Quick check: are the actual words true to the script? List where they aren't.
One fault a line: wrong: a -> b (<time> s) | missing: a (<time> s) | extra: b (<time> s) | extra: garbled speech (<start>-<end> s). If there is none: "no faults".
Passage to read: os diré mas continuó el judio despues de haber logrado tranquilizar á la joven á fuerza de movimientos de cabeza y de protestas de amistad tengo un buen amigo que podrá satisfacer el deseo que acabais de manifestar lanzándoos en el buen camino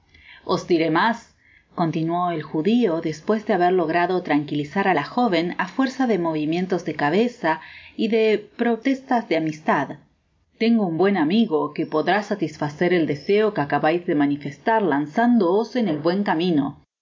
no faults